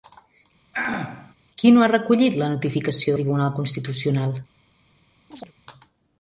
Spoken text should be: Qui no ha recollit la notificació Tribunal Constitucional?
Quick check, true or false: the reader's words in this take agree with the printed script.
true